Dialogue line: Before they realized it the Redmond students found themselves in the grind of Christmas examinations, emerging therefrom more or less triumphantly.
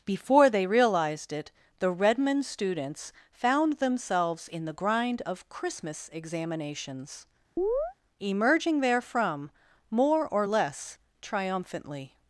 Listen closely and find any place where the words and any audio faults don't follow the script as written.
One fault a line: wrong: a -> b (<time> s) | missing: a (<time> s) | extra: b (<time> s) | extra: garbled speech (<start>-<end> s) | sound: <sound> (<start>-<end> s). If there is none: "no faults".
sound: chirp (7.6-7.9 s)